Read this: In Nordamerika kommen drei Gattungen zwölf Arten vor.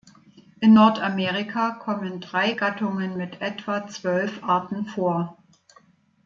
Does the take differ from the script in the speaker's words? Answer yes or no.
yes